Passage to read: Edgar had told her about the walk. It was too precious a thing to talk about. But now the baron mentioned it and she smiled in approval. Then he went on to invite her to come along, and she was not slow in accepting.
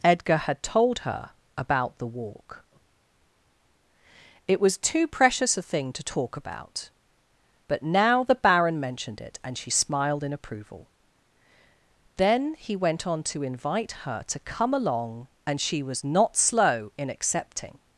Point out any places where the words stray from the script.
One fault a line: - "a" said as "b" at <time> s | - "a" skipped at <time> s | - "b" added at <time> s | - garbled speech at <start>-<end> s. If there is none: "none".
none